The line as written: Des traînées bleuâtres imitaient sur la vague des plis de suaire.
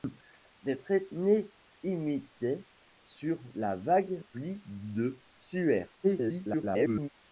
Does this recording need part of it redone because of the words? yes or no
yes